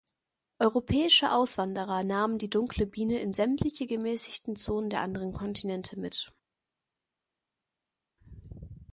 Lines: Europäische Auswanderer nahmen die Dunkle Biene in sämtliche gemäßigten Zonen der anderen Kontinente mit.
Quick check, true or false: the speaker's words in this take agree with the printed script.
true